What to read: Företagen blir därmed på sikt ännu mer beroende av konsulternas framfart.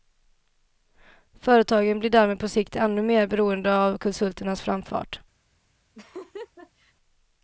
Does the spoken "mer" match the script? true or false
true